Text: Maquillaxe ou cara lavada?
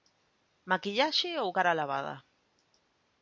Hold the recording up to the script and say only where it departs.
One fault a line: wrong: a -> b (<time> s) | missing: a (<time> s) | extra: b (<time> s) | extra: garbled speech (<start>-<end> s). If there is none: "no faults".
no faults